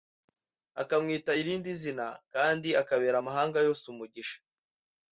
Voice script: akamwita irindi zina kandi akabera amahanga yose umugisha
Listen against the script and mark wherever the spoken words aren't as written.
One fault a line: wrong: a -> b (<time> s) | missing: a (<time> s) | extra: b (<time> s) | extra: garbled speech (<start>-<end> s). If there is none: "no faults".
no faults